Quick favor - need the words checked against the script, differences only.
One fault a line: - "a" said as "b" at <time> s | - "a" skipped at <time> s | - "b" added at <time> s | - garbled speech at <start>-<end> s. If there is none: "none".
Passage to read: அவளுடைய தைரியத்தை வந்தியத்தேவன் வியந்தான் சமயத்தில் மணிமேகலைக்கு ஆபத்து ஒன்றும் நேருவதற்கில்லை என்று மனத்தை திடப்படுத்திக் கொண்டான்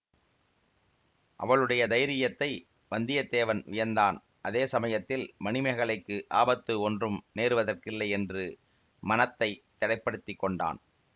- "அதே" added at 4.4 s